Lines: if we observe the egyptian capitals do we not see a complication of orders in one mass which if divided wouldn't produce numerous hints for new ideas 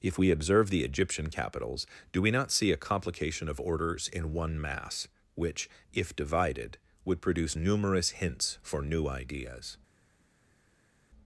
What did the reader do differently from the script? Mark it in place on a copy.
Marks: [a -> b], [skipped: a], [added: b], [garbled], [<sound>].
if we observe the egyptian capitals do we not see a complication of orders in one mass which if divided [wouldn't -> would] produce numerous hints for new ideas